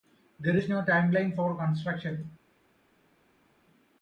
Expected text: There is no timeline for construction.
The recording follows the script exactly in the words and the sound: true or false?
true